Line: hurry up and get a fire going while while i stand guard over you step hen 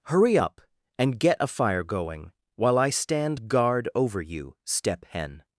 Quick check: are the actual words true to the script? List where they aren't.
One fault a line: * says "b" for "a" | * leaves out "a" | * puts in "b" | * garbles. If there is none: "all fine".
* leaves out "while"